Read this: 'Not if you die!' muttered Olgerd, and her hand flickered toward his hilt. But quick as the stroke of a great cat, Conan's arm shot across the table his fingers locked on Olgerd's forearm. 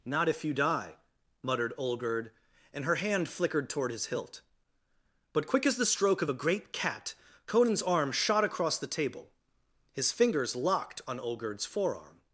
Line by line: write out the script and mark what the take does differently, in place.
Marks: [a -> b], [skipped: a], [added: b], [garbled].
'Not if you die!' muttered Olgerd, and her hand flickered toward his hilt. But quick as the stroke of a great cat, Conan's arm shot across the table his fingers locked on Olgerd's forearm.